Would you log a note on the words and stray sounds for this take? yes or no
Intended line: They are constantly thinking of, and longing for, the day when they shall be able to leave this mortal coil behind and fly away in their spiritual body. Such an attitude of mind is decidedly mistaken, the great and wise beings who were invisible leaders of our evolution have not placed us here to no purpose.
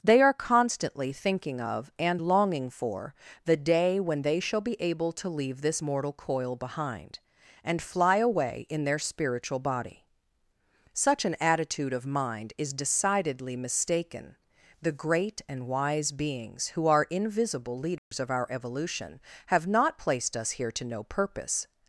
yes